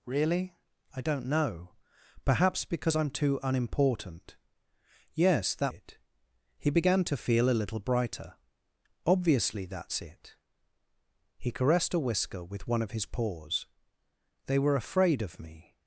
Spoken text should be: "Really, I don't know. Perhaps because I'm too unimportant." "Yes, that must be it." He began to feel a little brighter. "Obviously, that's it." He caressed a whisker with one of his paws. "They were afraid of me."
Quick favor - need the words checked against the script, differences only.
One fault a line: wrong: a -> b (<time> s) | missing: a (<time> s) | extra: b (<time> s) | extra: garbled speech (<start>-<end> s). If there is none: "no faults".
missing: must be (5.7 s)